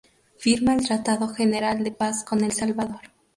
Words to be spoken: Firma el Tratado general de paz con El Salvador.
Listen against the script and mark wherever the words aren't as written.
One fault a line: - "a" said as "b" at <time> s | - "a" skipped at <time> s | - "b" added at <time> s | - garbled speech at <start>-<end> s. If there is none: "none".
none